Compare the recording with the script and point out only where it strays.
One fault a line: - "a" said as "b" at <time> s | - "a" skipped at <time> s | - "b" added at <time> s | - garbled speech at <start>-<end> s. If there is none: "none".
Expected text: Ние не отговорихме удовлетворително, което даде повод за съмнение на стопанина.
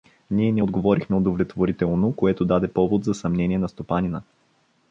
none